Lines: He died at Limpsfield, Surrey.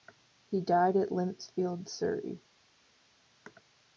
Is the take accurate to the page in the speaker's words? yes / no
yes